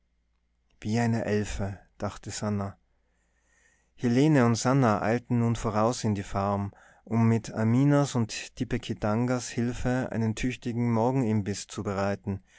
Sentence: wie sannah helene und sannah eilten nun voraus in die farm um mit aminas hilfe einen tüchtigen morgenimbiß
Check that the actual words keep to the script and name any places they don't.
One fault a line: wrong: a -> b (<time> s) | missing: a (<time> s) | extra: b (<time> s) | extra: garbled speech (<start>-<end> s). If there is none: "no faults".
extra: eine elfe dachte (1.0 s)
extra: und tipekitangas (8.2 s)